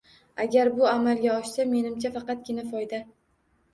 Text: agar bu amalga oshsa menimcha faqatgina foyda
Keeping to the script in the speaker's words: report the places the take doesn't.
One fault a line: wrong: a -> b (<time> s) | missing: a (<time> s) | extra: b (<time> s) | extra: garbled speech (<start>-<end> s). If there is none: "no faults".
no faults